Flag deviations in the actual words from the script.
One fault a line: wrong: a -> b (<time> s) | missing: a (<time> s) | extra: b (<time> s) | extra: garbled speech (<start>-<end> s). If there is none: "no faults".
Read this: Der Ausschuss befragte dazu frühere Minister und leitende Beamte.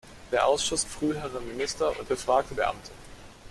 missing: befragte dazu (0.8 s)
wrong: leitende -> befragte (2.0 s)